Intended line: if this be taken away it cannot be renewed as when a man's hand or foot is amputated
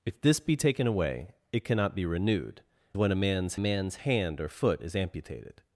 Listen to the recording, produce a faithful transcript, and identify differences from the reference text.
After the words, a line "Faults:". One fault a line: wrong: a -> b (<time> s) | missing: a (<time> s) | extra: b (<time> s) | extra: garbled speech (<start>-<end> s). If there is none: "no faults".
if this be taken away it cannot be renewed when a man's man's hand or foot is amputated
Faults:
missing: as (2.6 s)
extra: man's (3.6 s)